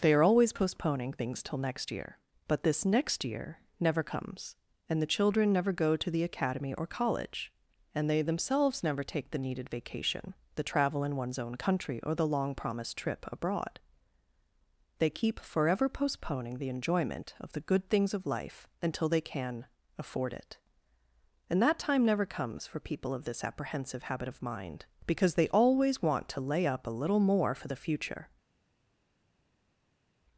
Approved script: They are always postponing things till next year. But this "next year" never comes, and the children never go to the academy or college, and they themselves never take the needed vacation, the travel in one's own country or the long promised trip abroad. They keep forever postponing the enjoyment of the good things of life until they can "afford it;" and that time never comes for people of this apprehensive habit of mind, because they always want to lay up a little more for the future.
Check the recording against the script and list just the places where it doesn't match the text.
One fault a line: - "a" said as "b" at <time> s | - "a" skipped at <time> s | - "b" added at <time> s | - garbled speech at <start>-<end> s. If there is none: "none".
none